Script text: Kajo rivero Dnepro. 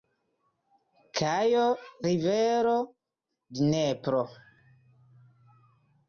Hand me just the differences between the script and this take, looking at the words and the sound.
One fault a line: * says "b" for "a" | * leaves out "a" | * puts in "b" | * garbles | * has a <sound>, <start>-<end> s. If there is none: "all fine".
all fine